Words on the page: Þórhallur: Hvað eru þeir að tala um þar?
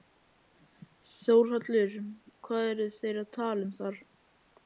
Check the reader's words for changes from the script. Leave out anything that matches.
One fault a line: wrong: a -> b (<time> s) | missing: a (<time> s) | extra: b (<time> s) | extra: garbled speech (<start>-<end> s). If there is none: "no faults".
no faults